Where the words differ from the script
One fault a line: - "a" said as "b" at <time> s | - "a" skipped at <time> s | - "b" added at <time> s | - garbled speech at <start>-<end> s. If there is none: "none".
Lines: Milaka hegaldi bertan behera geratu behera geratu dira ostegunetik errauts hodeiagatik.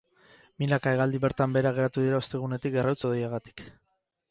- "behera geratu" skipped at 2.1 s